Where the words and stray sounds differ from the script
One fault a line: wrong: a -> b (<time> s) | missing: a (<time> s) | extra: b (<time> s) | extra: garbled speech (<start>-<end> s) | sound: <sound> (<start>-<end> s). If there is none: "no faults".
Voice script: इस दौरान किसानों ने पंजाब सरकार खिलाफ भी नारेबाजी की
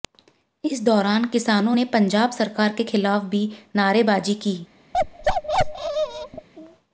extra: के (2.7 s)
sound: bark (4.9-6.5 s)